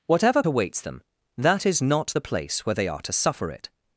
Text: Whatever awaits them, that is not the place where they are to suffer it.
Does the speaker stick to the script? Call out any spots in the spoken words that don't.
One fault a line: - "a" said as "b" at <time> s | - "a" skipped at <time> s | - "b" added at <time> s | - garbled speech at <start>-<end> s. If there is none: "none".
none